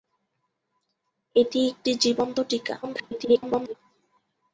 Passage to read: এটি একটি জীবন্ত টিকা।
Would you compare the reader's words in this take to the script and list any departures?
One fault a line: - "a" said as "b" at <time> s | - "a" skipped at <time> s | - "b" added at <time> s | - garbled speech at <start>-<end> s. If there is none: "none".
- garbled speech at 2.8-3.7 s